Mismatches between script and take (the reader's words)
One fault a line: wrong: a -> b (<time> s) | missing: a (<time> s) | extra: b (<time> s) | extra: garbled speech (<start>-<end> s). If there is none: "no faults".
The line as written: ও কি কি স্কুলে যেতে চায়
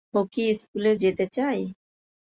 missing: কি (0.4 s)